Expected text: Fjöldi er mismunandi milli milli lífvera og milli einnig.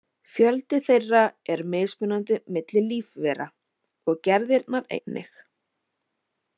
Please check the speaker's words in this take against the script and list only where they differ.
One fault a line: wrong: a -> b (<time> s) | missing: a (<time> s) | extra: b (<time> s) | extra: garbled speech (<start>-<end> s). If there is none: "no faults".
extra: þeirra (0.9 s)
missing: milli (2.9 s)
wrong: milli -> gerðirnar (4.3 s)